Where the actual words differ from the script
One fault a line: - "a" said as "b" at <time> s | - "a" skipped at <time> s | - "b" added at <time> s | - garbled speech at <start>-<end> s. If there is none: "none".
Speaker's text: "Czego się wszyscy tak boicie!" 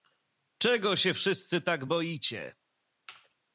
none